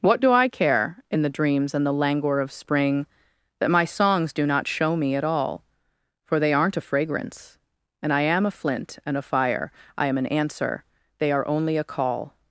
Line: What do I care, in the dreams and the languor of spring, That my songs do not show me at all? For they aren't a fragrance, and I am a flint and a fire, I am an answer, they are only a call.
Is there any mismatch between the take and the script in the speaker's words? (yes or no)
no